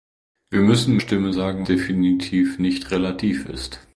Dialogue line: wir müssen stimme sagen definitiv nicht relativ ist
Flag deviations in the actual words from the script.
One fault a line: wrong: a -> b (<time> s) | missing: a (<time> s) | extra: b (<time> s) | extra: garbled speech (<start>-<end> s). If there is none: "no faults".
no faults